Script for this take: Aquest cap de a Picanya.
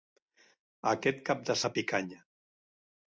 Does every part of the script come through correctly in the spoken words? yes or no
yes